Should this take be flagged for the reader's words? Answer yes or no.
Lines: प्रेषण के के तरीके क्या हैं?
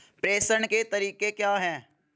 yes